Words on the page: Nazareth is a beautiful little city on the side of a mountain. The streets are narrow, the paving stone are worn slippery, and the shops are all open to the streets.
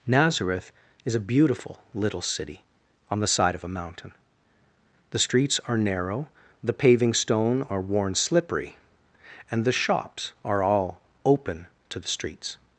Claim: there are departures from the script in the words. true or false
false